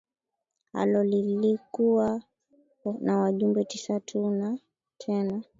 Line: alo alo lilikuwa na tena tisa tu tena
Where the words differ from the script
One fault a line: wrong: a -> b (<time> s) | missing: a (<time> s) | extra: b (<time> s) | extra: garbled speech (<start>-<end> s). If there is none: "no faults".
missing: alo (1.0 s)
wrong: tena -> wajumbe (3.2 s)
extra: na (4.3 s)